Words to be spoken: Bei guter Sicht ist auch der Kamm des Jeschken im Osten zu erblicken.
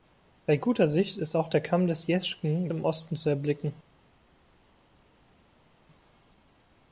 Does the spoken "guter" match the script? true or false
true